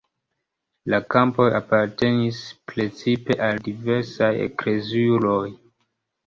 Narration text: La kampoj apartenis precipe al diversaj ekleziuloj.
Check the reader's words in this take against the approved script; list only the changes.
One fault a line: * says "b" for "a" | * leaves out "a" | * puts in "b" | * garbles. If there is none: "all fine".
all fine